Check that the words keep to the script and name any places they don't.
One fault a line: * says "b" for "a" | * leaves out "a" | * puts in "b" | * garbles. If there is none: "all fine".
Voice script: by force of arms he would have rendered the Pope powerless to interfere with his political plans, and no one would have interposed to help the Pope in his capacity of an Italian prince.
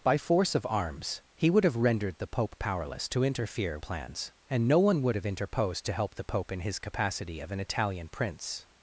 * leaves out "with his political"